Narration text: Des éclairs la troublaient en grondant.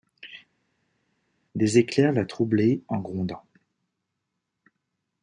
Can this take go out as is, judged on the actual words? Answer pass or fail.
pass